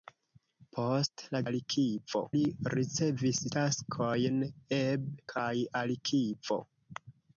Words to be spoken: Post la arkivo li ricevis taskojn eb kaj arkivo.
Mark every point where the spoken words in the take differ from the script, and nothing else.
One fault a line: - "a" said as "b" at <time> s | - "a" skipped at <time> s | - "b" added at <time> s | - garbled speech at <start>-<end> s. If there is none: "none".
none